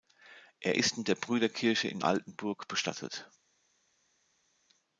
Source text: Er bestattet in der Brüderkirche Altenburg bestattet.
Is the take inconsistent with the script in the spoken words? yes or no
yes